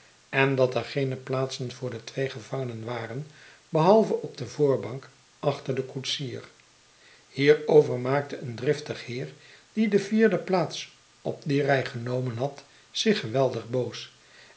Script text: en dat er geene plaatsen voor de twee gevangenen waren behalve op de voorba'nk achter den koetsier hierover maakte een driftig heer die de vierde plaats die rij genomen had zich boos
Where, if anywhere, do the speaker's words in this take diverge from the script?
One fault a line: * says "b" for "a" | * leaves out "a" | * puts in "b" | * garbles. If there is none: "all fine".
* puts in "op"
* puts in "geweldig"